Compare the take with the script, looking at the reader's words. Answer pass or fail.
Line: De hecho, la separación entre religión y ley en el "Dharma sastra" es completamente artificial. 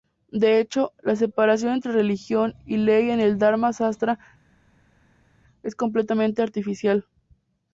pass